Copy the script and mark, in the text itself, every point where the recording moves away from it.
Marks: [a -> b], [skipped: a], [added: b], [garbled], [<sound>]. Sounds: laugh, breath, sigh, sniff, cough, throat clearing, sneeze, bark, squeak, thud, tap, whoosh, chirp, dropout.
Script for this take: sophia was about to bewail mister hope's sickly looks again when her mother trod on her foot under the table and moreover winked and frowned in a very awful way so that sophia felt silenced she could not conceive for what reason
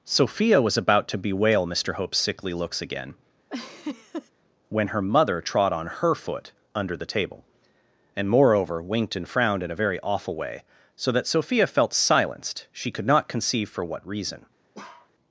sophia was about to bewail mister hope's sickly looks again [laugh] when her mother trod on her foot under the table and moreover winked and frowned in a very awful way so that sophia felt silenced she could not conceive for what reason [bark]